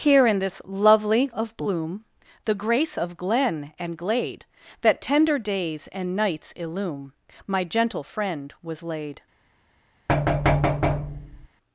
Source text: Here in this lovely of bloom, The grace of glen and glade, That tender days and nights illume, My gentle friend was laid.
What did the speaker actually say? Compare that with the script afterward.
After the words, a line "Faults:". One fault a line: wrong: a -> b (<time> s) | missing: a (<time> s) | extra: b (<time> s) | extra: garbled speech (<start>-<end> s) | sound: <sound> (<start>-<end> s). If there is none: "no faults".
Here in this lovely of bloom, The grace of glen and glade, That tender days and nights illume, My gentle friend was laid.
Faults:
sound: thud (10.1-11.5 s)